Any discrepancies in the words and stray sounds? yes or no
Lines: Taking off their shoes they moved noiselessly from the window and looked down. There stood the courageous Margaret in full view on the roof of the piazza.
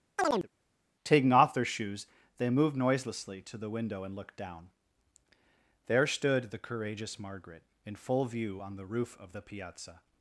yes